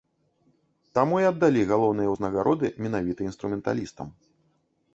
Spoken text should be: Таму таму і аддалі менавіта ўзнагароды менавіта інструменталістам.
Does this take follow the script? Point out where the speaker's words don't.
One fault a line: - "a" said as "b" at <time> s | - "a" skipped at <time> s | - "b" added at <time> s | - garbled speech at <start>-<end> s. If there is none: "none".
- "таму" skipped at 1.2 s
- "менавіта" said as "галоўныя" at 1.7 s